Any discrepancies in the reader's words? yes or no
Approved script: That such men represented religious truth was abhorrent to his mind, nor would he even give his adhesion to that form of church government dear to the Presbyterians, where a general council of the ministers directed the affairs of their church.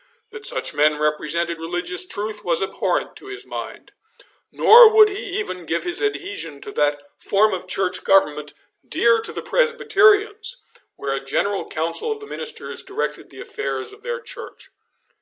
no